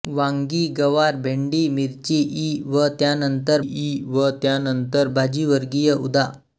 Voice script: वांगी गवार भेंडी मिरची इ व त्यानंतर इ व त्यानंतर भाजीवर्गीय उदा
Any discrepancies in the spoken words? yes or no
no